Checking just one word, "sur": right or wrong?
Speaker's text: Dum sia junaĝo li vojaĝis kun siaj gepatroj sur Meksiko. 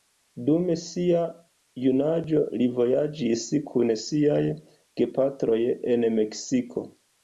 wrong